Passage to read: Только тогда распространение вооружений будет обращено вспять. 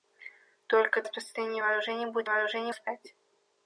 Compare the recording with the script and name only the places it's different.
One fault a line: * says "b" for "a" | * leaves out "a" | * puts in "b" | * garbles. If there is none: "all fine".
* leaves out "тогда"
* says "вооружений" for "обращено"